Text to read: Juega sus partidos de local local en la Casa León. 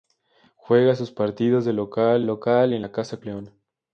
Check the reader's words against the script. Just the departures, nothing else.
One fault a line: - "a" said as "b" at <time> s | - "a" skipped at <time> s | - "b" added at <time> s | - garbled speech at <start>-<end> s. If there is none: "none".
none